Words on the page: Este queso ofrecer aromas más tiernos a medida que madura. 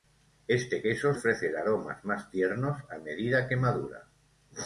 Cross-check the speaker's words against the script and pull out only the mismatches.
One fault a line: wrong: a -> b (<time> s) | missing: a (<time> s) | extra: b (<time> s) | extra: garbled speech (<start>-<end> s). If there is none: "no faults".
no faults